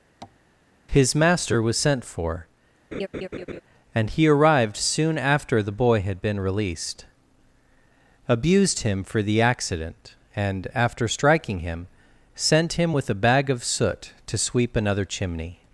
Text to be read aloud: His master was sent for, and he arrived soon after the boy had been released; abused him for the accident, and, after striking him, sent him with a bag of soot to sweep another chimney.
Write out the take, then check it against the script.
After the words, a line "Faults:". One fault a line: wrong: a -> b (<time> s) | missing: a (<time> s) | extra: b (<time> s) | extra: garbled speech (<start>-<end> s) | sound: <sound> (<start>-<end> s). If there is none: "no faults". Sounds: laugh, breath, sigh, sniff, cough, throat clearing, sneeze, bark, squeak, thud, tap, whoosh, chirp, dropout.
His master was sent for, and he arrived soon after the boy had been released; abused him for the accident, and, after striking him, sent him with a bag of soot to sweep another chimney.
Faults:
sound: tap (0.2-0.4 s)
sound: laugh (2.9-3.6 s)